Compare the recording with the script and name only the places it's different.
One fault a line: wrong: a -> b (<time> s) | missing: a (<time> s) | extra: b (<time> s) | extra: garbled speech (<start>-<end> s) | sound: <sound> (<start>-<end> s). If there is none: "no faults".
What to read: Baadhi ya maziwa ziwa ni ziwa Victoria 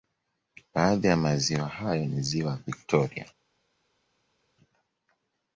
wrong: ziwa -> hayo (1.7 s)